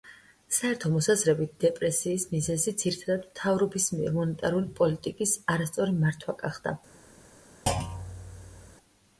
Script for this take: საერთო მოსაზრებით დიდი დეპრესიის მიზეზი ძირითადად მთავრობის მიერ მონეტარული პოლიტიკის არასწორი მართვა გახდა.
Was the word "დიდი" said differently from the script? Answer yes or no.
yes